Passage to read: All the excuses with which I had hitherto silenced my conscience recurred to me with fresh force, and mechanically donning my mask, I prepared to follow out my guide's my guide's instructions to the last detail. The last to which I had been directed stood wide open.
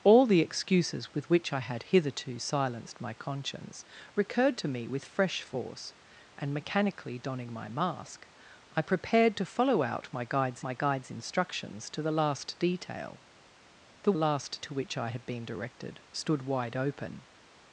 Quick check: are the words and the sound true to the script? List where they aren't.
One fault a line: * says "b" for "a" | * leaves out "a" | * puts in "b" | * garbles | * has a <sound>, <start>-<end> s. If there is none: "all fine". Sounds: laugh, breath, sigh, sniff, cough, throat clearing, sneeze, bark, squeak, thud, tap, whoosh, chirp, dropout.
all fine